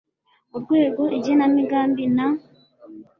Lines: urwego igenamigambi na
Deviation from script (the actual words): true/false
false